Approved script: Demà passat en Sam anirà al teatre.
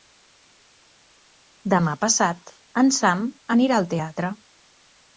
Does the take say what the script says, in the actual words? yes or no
yes